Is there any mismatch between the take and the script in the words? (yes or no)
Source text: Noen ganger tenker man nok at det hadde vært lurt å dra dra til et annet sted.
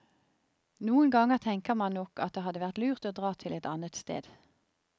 yes